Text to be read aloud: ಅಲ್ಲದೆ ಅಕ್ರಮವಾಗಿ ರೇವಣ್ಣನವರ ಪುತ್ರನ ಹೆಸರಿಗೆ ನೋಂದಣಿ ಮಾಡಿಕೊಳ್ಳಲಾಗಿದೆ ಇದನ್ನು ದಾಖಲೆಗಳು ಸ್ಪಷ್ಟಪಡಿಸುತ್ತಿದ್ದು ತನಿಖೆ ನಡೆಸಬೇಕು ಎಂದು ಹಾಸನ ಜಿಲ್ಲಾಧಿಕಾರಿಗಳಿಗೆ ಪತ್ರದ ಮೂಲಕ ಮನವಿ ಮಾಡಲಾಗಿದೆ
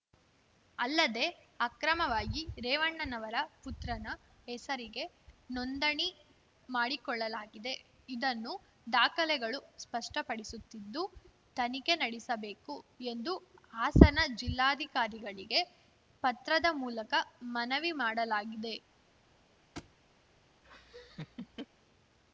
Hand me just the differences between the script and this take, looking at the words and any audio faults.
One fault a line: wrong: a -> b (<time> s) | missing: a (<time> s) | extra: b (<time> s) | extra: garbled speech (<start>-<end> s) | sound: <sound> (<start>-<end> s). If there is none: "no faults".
sound: thud (19.8-19.9 s)
sound: laugh (20.6-21.7 s)